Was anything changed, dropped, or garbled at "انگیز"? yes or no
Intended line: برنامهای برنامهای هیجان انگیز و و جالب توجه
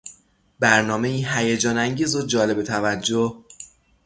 no